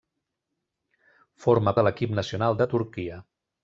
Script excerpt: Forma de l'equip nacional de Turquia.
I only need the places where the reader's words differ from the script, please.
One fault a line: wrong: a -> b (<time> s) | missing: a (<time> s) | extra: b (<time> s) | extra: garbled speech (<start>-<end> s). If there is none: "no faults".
no faults